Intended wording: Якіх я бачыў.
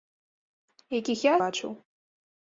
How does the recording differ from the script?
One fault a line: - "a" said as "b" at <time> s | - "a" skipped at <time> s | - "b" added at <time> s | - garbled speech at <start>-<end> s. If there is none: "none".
none